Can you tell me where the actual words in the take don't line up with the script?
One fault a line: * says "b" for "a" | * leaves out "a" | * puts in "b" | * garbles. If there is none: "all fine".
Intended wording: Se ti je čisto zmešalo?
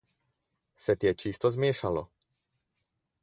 all fine